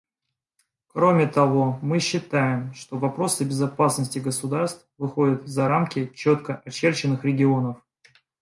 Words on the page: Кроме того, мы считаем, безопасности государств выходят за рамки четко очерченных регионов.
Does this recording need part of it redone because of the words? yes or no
yes